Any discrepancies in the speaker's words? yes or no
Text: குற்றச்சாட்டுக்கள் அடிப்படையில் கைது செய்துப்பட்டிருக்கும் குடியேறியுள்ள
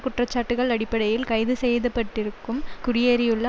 no